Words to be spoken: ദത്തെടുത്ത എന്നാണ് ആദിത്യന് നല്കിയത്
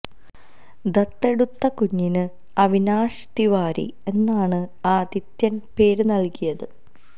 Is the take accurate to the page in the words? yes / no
no